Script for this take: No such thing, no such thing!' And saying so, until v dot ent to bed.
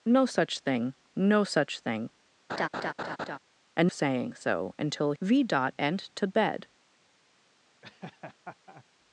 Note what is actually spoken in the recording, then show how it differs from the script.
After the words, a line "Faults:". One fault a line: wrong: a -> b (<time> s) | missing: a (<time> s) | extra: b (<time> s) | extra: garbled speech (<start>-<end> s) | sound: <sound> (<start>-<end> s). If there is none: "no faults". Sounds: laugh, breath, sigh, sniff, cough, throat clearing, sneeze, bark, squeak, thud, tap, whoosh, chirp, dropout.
No such thing, no such thing!' And saying so, until v dot ent to bed.
Faults:
sound: laugh (2.5-3.4 s)
sound: laugh (7.8-8.8 s)